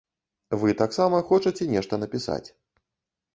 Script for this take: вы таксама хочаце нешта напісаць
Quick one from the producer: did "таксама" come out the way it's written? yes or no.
yes